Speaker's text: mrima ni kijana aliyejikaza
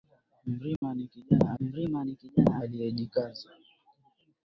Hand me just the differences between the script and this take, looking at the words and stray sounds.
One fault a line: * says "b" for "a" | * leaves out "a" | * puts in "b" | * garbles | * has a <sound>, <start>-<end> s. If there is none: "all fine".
* has a dropout, 0.8-0.8 s
* puts in "mrima ni kijana"